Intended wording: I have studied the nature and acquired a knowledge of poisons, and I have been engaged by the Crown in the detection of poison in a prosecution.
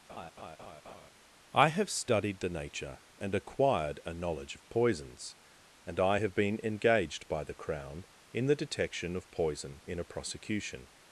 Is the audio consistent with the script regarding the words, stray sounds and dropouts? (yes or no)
no